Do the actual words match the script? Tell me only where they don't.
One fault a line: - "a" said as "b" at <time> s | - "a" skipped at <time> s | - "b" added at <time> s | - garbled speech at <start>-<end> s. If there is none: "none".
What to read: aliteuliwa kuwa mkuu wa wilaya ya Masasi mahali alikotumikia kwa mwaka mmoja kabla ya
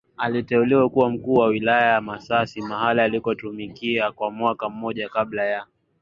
none